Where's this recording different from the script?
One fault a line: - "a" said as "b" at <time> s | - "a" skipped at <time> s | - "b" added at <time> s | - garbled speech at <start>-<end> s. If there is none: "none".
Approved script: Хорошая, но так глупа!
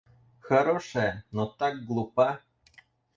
none